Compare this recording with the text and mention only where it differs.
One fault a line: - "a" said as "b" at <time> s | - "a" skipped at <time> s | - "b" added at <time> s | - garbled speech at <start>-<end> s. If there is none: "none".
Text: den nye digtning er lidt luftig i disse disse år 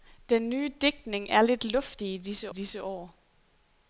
none